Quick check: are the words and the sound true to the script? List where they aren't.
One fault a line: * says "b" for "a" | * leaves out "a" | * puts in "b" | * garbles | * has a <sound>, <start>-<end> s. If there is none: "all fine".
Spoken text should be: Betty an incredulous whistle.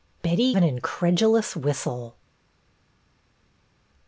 all fine